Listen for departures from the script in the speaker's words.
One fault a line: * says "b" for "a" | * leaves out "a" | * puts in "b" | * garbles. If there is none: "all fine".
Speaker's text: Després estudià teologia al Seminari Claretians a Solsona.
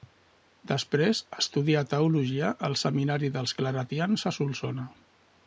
* puts in "dels"